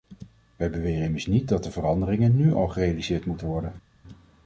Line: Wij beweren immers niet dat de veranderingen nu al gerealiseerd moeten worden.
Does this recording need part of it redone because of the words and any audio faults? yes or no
no